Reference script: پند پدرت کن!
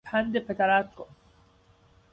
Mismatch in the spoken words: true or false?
false